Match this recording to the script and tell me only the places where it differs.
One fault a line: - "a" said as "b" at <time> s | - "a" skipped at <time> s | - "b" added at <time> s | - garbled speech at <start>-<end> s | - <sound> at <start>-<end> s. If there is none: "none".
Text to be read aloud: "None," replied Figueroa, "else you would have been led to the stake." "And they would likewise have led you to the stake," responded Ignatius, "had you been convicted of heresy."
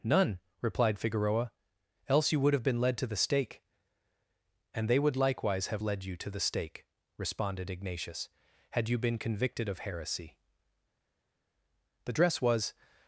- "The dress was" added at 12.1 s